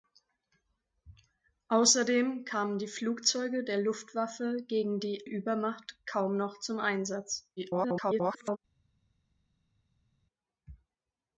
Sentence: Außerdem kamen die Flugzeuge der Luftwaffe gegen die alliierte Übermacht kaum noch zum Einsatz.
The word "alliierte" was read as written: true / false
false